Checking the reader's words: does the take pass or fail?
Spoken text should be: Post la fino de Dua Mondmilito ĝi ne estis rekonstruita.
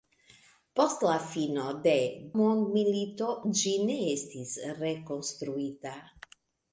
fail